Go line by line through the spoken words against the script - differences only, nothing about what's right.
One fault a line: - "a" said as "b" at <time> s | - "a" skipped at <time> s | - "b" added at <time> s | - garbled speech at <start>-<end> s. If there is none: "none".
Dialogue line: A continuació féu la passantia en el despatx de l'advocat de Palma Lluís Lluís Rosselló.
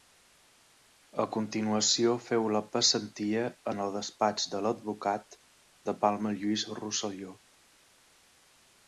- "Lluís" skipped at 6.7 s